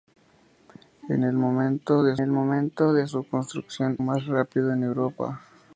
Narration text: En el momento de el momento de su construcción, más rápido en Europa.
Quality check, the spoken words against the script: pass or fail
pass